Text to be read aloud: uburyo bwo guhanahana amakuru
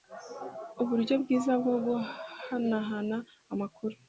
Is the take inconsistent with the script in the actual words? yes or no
yes